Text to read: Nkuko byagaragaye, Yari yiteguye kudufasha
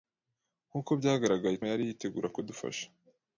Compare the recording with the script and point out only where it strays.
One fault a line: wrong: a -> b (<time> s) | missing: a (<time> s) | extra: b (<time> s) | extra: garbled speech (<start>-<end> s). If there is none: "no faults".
no faults